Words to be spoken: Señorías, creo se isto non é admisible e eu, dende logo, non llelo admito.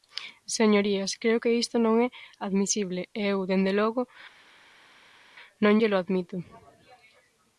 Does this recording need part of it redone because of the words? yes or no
yes